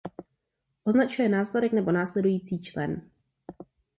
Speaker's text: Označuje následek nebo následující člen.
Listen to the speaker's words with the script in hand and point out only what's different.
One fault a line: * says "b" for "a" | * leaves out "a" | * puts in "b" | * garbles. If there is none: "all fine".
all fine